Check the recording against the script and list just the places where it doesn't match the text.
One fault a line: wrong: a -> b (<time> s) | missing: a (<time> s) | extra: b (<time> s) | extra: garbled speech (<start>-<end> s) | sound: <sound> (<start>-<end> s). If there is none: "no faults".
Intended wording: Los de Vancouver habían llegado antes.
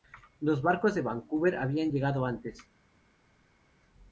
extra: barcos (0.6 s)